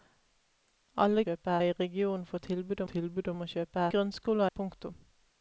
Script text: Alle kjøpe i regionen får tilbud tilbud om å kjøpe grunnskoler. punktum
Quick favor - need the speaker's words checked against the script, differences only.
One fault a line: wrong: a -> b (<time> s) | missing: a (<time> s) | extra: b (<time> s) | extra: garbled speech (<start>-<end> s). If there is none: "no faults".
no faults